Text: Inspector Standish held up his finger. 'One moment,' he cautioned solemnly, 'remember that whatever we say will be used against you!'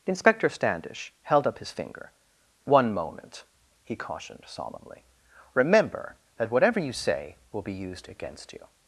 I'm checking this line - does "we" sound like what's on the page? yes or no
no